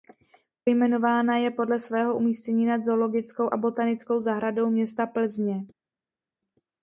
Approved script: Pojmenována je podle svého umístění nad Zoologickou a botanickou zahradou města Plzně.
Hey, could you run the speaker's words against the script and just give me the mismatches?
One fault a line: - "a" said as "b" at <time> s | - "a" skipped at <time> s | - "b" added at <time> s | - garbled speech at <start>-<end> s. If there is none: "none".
none